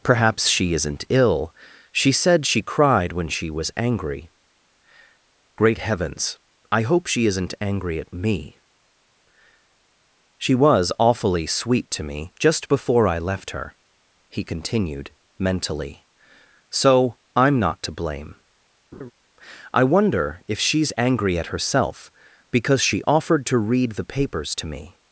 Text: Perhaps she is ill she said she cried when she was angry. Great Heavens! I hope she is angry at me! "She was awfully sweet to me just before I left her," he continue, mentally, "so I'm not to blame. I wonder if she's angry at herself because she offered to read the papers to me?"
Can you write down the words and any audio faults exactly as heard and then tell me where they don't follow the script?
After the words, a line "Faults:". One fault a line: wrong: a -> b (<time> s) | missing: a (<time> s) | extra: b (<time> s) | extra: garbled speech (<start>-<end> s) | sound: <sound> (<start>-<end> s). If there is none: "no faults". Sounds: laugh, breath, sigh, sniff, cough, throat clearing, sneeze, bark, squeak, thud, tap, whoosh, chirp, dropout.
Perhaps she isn't ill she said she cried when she was angry. Great Heavens! I hope she isn't angry at me! "She was awfully sweet to me just before I left her," he continued, mentally, "so I'm not to blame. I wonder if she's angry at herself because she offered to read the papers to me?"
Faults:
wrong: is -> isn't (0.7 s)
wrong: is -> isn't (7.2 s)
wrong: continue -> continued (14.4 s)
sound: laugh (18.9-19.1 s)